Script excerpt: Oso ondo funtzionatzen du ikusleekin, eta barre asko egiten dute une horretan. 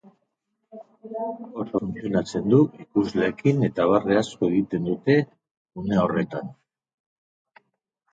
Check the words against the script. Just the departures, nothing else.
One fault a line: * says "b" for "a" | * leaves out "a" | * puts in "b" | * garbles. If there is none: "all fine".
* leaves out "ondo"